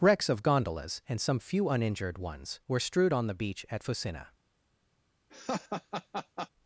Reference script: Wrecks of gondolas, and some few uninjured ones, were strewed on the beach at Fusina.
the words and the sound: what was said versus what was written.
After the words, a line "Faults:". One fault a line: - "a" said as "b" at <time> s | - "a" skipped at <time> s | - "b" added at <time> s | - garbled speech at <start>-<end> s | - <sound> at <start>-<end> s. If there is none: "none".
Wrecks of gondolas, and some few uninjured ones, were strewed on the beach at Fusina.
Faults:
- laugh at 5.3-6.5 s